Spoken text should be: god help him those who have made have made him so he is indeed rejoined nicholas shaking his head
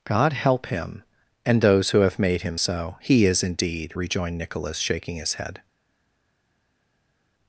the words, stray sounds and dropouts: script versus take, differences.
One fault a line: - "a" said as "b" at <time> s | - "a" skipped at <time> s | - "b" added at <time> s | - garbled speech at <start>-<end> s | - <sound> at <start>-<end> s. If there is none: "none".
- "and" added at 1.4 s
- "have made" skipped at 2.4 s